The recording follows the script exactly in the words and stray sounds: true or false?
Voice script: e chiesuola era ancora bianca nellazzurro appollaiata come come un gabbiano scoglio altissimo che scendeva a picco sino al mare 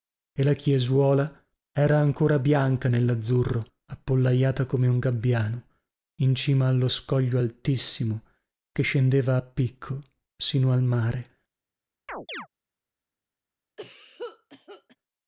false